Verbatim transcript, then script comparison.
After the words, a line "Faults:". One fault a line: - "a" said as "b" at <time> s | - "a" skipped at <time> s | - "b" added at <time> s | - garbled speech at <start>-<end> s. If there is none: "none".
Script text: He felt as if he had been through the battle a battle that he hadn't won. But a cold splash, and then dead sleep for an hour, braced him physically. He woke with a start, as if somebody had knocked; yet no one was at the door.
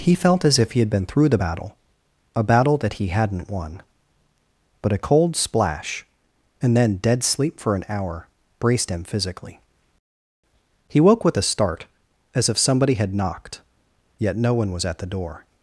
He felt as if he had been through the battle a battle that he hadn't won. But a cold splash, and then dead sleep for an hour, braced him physically. He woke with a start, as if somebody had knocked; yet no one was at the door.
Faults:
none